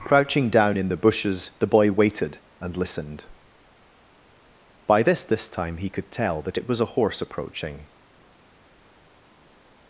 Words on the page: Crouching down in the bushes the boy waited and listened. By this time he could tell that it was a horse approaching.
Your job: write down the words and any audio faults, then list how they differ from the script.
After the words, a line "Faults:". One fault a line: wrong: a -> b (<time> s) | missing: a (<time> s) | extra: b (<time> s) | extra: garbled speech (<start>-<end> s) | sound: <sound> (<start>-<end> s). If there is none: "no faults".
Crouching down in the bushes the boy waited and listened. By this this time he could tell that it was a horse approaching.
Faults:
extra: this (5.3 s)